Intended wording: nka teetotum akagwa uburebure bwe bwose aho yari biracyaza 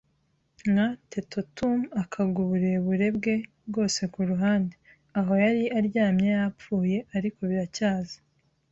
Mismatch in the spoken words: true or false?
true